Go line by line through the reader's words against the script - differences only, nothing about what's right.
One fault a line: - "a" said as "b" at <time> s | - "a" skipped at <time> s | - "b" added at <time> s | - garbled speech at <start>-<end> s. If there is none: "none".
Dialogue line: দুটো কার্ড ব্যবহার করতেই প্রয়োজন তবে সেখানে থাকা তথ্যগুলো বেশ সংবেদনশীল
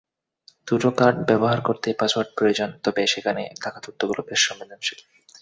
- "পাসওয়ার্ড" added at 2.0 s